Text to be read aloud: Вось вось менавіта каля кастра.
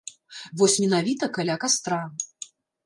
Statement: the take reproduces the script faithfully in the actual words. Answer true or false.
false